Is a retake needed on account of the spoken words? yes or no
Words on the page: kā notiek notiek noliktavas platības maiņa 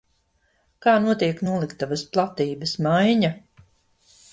yes